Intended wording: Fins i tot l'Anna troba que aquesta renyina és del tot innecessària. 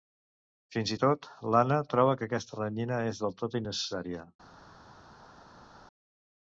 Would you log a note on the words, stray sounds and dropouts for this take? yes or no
no